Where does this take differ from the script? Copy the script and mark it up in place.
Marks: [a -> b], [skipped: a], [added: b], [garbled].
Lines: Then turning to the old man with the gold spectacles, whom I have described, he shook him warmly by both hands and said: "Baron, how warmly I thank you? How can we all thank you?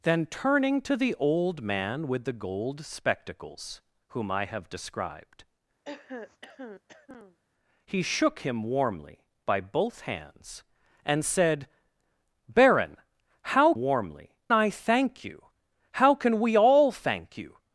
Then turning to the old man with the gold spectacles, whom I have described, he shook him warmly by both hands and said: "Baron, how warmly I thank you? How can we all thank you?